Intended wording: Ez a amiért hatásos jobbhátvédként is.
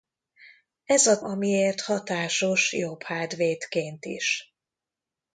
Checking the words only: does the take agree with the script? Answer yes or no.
yes